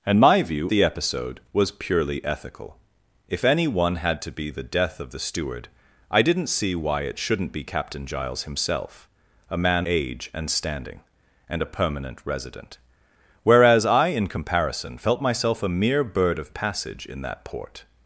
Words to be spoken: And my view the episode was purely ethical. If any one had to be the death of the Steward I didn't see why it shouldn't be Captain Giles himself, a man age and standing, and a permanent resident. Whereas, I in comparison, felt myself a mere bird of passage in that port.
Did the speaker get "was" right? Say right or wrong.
right